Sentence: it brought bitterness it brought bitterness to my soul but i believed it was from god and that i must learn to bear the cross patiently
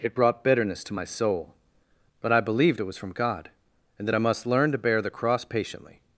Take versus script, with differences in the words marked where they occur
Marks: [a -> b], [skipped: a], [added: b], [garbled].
it brought bitterness [skipped: it brought bitterness] to my soul but i believed it was from god and that i must learn to bear the cross patiently